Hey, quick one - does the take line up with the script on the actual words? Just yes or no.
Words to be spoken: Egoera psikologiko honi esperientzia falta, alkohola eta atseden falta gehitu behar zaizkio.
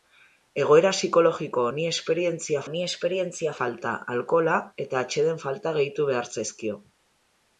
no